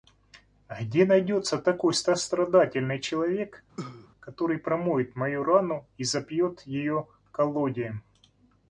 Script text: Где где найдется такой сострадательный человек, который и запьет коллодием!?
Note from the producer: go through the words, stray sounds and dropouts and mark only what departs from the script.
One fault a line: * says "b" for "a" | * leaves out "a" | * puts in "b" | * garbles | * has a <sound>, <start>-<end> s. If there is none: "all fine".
* leaves out "где"
* has a cough, 3.8-4.1 s
* puts in "промоет мою рану"
* puts in "ее"